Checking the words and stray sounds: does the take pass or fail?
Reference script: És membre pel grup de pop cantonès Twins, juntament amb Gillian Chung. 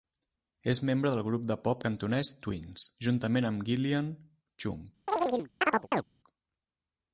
fail